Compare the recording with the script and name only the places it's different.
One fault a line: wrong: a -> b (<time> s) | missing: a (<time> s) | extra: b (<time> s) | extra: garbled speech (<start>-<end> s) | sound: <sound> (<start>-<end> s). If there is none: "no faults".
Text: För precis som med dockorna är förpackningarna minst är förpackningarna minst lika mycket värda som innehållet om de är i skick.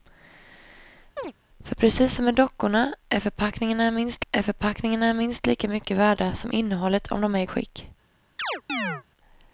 sound: chirp (1.2-1.3 s)
sound: chirp (8.4-9.0 s)